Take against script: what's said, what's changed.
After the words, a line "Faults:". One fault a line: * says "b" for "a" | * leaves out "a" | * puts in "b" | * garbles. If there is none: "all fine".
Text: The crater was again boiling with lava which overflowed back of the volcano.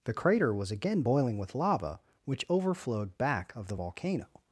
The crater was again boiling with lava which overflowed back of the volcano.
Faults:
all fine